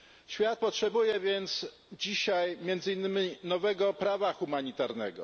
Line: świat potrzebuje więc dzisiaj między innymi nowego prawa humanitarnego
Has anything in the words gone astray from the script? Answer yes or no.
no